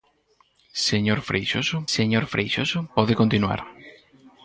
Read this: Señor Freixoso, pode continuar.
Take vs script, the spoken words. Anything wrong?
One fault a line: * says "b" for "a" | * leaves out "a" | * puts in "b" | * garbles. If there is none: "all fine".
* puts in "señor Freixoso"